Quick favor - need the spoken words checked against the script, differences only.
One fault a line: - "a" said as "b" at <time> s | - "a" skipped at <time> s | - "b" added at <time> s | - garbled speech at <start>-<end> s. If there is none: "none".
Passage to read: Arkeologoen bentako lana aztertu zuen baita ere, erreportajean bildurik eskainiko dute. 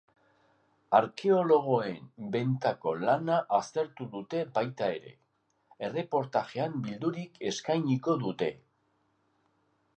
- "zuen" said as "dute" at 4.1 s